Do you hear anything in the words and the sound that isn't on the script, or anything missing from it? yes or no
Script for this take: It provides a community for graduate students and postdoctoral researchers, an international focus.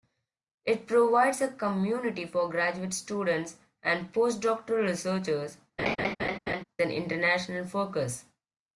yes